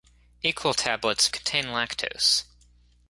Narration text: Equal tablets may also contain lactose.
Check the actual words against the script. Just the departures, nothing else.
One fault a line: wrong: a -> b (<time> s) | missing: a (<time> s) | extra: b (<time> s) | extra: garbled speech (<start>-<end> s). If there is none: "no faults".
missing: may also (1.3 s)